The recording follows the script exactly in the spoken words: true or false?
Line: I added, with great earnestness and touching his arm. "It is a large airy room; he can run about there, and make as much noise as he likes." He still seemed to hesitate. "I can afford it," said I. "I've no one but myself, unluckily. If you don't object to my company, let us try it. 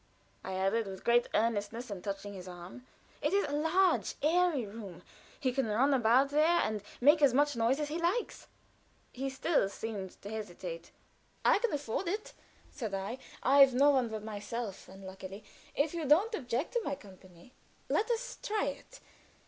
true